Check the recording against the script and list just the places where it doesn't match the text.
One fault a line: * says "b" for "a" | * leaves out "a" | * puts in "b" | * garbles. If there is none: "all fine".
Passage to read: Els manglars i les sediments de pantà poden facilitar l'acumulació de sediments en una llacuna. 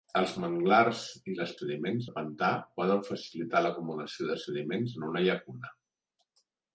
all fine